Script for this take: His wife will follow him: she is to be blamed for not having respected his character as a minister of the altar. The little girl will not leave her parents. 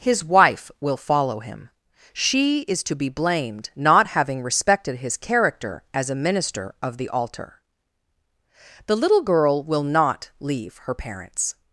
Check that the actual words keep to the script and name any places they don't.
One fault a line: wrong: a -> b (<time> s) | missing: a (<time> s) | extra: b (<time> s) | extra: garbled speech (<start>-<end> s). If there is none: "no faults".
missing: for (3.7 s)